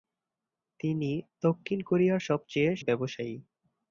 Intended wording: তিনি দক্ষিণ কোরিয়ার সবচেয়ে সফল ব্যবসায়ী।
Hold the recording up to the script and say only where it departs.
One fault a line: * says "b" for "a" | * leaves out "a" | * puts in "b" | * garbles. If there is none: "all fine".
* leaves out "সফল"